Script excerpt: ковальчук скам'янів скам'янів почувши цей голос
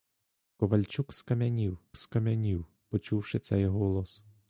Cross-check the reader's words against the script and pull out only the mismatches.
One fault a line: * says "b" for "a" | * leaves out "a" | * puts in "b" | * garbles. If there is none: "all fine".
all fine